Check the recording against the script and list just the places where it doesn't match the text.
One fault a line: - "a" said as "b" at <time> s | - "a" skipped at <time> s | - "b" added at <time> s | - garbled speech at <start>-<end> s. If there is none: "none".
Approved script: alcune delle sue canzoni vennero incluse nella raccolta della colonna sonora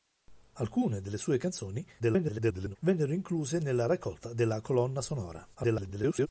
- garbled speech at 2.0-2.8 s
- garbled speech at 5.5-6.3 s